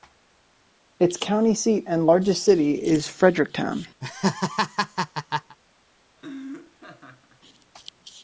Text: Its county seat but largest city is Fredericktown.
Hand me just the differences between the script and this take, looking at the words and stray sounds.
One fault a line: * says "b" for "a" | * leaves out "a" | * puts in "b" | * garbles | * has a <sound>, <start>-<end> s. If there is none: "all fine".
* says "and" for "but"
* has a laugh, 4.0-5.6 s
* has a laugh, 6.2-7.4 s